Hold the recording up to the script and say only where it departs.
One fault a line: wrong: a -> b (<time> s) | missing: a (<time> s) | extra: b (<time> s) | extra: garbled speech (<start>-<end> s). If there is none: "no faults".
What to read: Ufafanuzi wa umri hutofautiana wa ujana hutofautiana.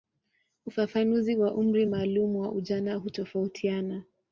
wrong: hutofautiana -> maalumu (1.8 s)